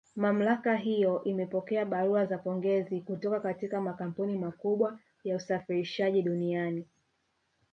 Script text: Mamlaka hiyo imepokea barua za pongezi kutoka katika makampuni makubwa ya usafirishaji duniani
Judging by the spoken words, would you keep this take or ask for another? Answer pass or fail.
pass